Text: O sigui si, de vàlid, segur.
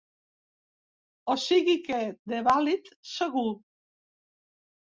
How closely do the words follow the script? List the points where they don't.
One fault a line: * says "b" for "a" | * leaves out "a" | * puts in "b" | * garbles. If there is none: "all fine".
* says "que" for "si"